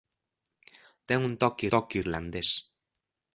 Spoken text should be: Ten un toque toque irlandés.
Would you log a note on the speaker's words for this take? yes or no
no